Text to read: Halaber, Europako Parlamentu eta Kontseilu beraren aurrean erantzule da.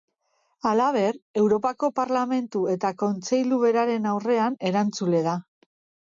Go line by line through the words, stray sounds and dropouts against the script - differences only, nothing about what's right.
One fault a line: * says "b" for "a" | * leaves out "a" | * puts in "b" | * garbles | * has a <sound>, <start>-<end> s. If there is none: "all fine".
all fine